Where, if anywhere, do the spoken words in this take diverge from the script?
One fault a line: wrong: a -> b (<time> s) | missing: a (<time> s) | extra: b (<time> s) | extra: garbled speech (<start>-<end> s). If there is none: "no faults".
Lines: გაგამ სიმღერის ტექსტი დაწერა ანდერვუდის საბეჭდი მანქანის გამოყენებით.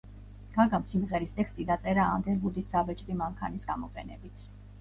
no faults